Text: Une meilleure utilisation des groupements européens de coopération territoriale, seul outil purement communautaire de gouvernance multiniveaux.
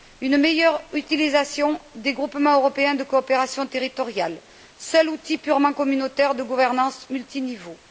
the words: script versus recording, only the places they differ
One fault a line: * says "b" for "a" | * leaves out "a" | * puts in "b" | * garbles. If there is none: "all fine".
all fine